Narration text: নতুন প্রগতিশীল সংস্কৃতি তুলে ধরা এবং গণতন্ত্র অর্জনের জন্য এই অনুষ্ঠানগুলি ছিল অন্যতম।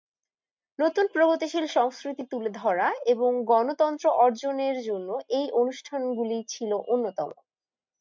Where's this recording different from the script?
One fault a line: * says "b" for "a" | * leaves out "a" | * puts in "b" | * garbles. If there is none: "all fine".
all fine